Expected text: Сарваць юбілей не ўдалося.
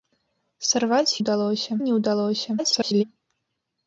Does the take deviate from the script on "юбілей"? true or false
true